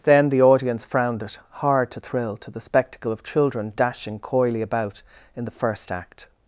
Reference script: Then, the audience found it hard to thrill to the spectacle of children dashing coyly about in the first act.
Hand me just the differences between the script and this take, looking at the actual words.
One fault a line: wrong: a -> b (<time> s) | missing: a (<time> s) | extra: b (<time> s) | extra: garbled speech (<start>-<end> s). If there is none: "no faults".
wrong: found -> frowned (0.8 s)